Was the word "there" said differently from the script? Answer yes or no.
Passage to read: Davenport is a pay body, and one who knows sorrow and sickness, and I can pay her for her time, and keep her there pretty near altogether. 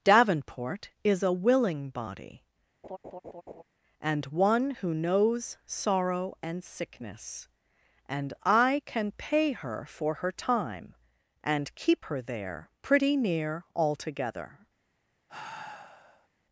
no